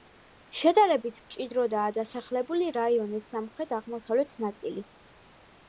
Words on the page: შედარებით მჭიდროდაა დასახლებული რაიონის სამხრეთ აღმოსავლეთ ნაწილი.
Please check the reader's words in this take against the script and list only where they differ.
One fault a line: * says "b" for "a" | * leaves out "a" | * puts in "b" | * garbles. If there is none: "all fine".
all fine